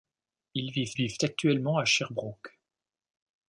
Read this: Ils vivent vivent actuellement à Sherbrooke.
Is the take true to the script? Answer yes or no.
yes